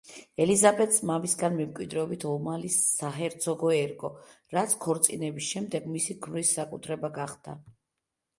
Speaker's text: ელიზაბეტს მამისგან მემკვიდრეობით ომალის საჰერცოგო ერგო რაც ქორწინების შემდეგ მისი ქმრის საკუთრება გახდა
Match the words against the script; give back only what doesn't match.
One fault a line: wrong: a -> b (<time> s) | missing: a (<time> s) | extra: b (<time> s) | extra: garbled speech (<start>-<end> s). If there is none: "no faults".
no faults